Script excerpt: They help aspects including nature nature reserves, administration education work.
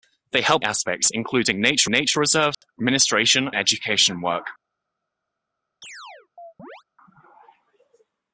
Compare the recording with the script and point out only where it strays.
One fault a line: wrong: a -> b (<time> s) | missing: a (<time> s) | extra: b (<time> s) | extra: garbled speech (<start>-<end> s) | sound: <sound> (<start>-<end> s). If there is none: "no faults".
sound: dropout (2.5-2.6 s)
sound: chirp (5.8-6.8 s)